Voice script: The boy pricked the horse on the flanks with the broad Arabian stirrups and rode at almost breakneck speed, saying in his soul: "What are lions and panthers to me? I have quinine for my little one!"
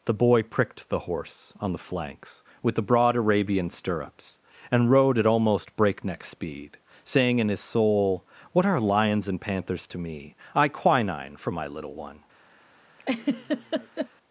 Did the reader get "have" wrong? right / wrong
wrong